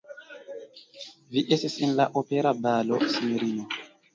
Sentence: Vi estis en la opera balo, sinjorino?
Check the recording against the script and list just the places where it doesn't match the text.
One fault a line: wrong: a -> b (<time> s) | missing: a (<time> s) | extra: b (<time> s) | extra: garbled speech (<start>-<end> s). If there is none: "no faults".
no faults